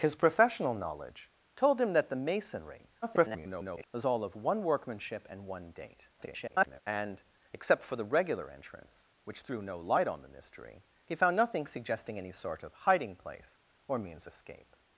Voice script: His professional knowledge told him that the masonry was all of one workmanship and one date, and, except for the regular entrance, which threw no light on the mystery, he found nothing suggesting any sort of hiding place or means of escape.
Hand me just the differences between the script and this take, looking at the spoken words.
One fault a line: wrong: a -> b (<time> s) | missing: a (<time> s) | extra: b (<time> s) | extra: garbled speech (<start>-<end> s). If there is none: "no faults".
extra: garbled speech (3.0-3.9 s)
extra: garbled speech (6.2-6.8 s)
missing: of (14.3 s)